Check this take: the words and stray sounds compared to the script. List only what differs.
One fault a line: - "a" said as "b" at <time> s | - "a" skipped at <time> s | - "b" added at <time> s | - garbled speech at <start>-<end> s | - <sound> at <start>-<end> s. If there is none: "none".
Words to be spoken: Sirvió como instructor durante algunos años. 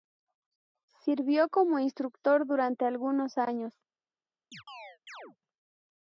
- chirp at 4.5-5.4 s